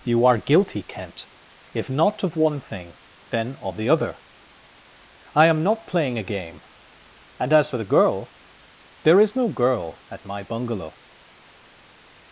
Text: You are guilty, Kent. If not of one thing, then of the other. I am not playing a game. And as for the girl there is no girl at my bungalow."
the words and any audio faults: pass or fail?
pass